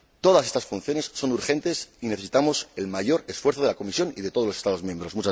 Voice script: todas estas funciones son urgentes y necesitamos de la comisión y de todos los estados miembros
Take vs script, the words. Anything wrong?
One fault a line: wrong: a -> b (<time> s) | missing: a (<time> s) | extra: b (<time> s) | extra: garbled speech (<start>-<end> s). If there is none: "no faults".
extra: el mayor esfuerzo (2.8 s)